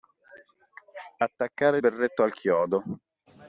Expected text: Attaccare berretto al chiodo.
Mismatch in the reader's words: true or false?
false